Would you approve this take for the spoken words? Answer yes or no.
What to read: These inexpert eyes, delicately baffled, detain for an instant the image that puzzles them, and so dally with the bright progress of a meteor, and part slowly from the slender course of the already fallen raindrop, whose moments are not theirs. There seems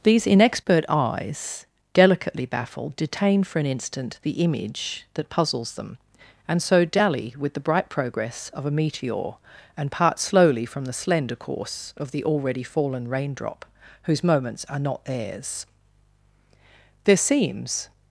yes